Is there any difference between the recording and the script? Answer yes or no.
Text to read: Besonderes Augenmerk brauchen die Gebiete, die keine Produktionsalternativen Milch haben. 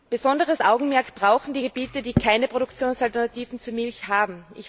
yes